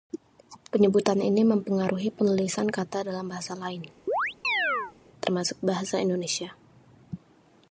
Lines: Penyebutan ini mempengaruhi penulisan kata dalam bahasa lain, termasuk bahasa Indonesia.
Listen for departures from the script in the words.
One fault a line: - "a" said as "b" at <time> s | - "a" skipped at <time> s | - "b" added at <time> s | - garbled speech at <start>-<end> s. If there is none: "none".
none